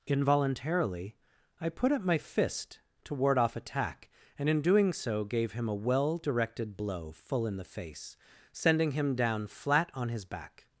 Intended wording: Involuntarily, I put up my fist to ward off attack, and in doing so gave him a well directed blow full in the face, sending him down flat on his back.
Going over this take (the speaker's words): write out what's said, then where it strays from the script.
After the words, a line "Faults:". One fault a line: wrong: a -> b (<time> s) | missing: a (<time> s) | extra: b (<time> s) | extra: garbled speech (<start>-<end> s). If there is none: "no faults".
Involuntarily, I put up my fist to ward off attack, and in doing so gave him a well directed blow full in the face, sending him down flat on his back.
Faults:
no faults